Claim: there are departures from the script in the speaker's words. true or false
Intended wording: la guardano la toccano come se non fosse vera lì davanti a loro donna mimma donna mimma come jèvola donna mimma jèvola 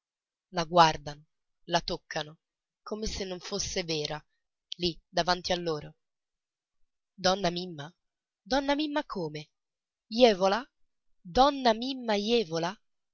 false